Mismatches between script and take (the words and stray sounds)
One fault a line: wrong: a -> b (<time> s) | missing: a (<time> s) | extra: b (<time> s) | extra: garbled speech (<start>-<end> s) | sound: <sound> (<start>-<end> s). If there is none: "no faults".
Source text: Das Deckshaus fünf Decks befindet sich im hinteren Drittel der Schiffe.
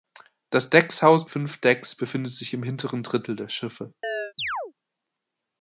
sound: chirp (4.0-4.7 s)